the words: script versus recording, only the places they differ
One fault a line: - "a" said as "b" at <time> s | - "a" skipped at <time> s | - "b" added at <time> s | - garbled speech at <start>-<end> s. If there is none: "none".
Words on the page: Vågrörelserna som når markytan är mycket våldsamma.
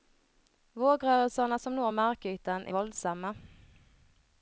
- "mycket" skipped at 2.7 s